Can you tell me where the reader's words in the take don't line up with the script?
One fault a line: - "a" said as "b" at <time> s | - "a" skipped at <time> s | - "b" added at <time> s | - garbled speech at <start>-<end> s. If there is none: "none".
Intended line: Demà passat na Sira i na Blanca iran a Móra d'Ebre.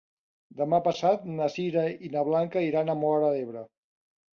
none